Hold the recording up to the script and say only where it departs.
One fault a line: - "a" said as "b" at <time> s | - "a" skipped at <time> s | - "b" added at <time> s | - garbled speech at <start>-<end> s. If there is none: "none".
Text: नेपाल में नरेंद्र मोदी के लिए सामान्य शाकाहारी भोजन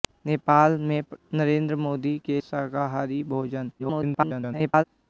- "लिए सामान्य" skipped at 2.4 s
- garbled speech at 3.8-4.8 s